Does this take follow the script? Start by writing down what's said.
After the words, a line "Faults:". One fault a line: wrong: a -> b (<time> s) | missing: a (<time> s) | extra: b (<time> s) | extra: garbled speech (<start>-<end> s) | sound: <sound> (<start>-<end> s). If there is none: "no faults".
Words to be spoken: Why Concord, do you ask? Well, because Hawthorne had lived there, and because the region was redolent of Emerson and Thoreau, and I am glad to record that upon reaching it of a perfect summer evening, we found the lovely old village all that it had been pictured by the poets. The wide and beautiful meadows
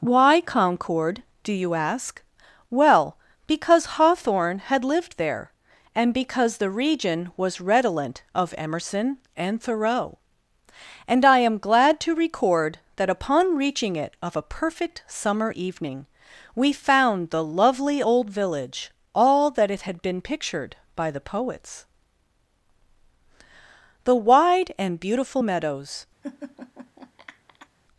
Why Concord, do you ask? Well, because Hawthorne had lived there, and because the region was redolent of Emerson and Thoreau, and I am glad to record that upon reaching it of a perfect summer evening, we found the lovely old village all that it had been pictured by the poets. The wide and beautiful meadows
Faults:
sound: laugh (26.2-27.7 s)